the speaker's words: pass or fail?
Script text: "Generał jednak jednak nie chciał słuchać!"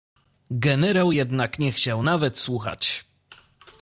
fail